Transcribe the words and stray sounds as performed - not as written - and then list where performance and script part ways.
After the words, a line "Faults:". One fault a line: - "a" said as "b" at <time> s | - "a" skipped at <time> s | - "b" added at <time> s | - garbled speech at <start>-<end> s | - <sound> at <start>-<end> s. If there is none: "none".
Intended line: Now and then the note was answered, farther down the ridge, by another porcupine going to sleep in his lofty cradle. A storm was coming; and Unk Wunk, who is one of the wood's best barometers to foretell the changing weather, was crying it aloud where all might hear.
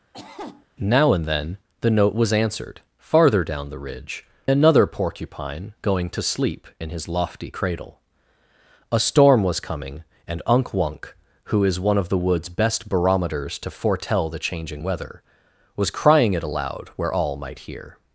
Now and then the note was answered, farther down the ridge, another porcupine going to sleep in his lofty cradle. A storm was coming; and Unk Wunk, who is one of the wood's best barometers to foretell the changing weather, was crying it aloud where all might hear.
Faults:
- cough at 0.1-0.7 s
- "by" skipped at 4.2 s